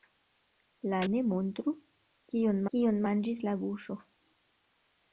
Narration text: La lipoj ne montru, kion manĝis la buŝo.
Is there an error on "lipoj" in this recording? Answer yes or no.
yes